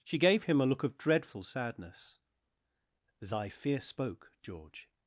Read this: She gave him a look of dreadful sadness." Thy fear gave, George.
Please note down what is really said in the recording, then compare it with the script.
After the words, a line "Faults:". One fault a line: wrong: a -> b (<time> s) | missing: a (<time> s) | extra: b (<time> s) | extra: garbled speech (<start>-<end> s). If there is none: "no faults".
She gave him a look of dreadful sadness." Thy fear spoke, George.
Faults:
wrong: gave -> spoke (3.8 s)